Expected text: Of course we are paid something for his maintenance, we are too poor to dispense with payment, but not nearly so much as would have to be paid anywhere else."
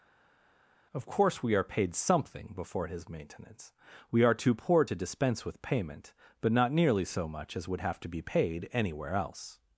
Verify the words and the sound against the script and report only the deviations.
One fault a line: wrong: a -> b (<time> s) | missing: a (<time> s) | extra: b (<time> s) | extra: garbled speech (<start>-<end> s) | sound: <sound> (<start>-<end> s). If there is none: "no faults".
wrong: for -> before (2.6 s)